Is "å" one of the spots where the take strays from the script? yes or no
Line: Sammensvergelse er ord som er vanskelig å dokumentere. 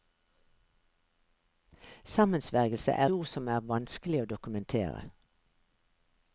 no